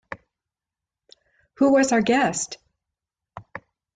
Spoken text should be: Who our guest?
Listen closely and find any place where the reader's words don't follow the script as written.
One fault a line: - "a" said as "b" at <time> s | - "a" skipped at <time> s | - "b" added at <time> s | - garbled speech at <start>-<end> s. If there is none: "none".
- "was" added at 1.7 s